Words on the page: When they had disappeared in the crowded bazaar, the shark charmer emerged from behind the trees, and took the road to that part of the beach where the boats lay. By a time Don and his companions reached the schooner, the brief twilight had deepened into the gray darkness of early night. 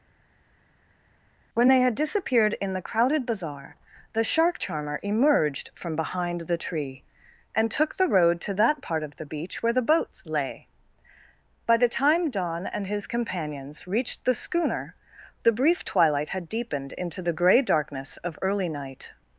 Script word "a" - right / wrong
wrong